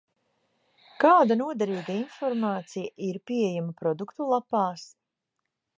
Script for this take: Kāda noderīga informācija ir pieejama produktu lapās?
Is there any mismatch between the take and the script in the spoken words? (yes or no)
no